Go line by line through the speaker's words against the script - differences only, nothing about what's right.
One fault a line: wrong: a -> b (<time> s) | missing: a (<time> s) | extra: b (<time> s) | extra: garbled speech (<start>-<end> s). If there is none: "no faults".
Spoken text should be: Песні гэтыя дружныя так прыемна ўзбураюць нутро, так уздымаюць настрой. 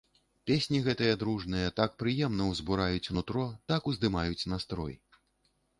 no faults